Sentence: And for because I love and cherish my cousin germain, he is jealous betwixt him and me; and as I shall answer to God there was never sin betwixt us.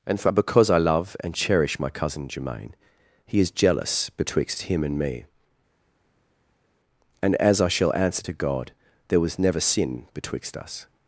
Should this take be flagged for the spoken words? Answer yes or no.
no